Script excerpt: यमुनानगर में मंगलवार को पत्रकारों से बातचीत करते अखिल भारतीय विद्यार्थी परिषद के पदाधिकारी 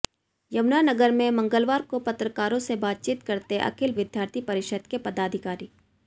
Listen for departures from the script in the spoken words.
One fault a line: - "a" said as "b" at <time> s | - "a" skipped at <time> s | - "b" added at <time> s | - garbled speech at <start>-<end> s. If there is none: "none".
- "भारतीय" skipped at 3.9 s